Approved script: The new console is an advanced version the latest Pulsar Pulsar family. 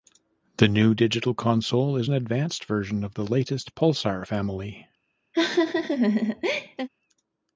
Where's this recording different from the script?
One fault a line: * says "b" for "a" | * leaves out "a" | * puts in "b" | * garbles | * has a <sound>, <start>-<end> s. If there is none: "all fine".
* puts in "digital"
* puts in "of"
* leaves out "Pulsar"
* has a laugh, 5.3-6.9 s